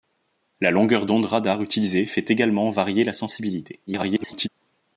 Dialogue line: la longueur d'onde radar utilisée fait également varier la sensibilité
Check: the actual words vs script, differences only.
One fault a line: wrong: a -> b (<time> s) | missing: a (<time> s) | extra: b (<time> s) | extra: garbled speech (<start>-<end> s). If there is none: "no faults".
extra: garbled speech (3.9-4.5 s)